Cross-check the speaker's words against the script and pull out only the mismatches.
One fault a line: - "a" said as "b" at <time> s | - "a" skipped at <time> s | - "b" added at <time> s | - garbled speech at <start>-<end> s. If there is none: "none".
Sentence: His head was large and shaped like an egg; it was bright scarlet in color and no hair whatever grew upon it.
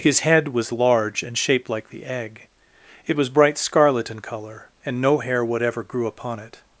- "an" said as "the" at 1.9 s